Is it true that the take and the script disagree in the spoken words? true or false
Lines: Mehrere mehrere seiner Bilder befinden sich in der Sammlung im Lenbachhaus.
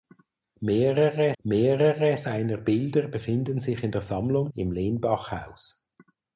false